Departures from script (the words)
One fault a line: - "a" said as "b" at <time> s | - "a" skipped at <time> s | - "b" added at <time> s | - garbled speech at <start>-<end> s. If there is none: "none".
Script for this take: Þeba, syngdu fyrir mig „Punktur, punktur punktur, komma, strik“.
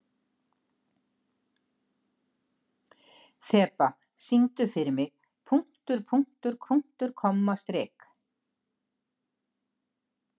none